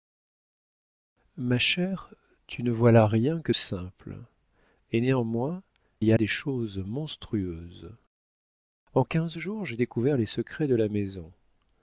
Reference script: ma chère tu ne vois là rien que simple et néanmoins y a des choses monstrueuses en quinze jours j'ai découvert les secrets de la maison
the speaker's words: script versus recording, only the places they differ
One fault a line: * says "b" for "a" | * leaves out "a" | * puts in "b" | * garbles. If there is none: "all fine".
all fine